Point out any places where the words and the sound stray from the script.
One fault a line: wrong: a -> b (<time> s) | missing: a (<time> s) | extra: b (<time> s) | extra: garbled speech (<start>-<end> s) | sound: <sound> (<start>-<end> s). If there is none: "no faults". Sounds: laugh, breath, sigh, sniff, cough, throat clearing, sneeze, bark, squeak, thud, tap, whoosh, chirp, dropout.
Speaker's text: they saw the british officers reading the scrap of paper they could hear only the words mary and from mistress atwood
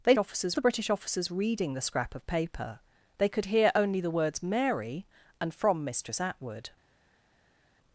wrong: saw -> officers (0.2 s)